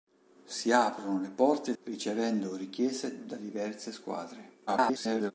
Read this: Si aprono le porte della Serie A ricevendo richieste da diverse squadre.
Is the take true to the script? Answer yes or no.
no